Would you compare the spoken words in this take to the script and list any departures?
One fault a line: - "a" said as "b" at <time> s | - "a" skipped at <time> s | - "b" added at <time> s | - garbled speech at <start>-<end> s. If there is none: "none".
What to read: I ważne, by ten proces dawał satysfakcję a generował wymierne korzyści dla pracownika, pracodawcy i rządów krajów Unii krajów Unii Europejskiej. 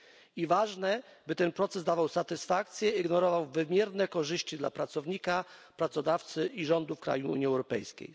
- "a" said as "i" at 2.9 s
- "krajów Unii" skipped at 7.5 s